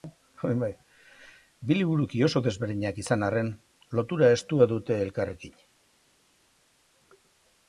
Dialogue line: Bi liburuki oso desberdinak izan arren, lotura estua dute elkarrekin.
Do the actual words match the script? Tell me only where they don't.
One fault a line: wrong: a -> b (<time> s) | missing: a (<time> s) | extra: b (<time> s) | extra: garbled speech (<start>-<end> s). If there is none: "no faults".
no faults